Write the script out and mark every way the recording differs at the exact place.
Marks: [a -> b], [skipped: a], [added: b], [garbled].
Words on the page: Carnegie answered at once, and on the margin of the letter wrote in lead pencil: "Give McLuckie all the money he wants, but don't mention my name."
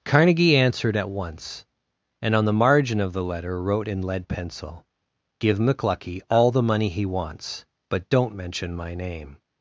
Carnegie answered at once, and on the margin of the letter wrote in lead pencil: "Give McLuckie all the money he wants, but don't mention my name."